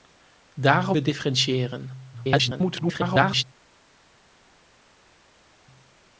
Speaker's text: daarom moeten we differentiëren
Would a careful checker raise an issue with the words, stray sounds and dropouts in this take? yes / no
yes